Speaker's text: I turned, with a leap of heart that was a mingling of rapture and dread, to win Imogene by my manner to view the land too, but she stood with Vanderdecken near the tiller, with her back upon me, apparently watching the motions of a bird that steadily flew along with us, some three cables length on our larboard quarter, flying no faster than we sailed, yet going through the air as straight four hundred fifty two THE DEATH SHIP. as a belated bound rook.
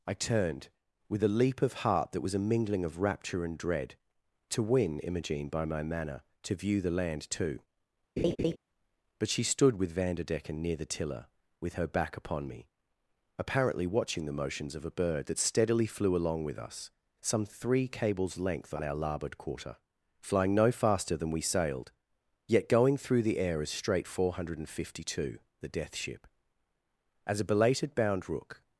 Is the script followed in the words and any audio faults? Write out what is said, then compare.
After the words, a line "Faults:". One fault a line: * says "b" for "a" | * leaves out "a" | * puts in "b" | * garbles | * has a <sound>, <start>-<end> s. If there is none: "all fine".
I turned, with a leap of heart that was a mingling of rapture and dread, to win Imogene by my manner to view the land too, but she stood with Vanderdecken near the tiller, with her back upon me, apparently watching the motions of a bird that steadily flew along with us, some three cables length on our larboard quarter, flying no faster than we sailed, yet going through the air as straight four hundred fifty two THE DEATH SHIP. as a belated bound rook.
Faults:
* has a laugh, 8.2-8.6 s